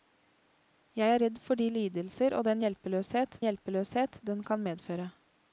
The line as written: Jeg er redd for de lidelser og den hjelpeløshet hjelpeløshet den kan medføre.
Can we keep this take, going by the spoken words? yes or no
yes